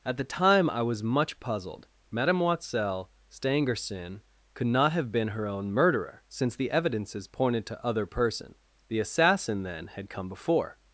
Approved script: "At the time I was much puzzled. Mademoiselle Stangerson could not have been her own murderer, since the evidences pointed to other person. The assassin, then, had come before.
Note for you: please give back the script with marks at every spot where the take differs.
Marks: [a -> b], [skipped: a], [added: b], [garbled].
"At the time I was much puzzled. Mademoiselle Stangerson could not have been her own murderer, since the evidences pointed to other person. The assassin, then, had come before.